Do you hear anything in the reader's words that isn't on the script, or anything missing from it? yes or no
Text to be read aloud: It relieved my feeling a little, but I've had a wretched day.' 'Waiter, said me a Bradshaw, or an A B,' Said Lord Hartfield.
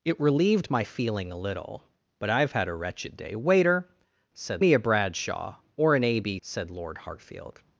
no